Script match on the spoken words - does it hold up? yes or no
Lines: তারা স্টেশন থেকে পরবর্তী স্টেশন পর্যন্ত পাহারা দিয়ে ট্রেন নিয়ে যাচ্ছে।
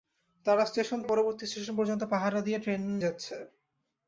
no